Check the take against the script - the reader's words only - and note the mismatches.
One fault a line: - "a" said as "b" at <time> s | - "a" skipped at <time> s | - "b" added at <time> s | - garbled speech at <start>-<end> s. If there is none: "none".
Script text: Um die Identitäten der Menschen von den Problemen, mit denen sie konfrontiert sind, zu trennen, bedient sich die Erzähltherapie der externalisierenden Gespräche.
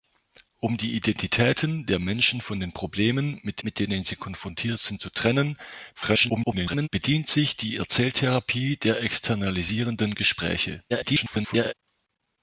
- "mit" added at 3.6 s
- garbled speech at 5.9-6.9 s
- garbled speech at 10.9-11.7 s